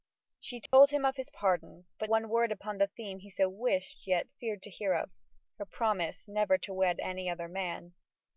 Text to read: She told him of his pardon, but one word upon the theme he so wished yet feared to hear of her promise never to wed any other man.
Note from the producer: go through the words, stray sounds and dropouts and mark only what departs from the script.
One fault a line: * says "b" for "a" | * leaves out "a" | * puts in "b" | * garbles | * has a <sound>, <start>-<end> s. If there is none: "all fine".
* has a dropout, 0.7-0.7 s